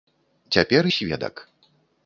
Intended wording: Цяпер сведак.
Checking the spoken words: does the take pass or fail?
pass